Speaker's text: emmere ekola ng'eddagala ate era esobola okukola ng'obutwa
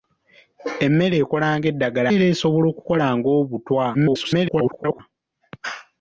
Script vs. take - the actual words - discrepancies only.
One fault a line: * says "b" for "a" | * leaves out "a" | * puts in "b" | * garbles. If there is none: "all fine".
* leaves out "ate"
* garbles